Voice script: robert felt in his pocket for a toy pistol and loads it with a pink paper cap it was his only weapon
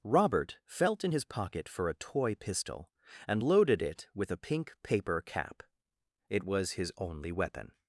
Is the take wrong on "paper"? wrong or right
right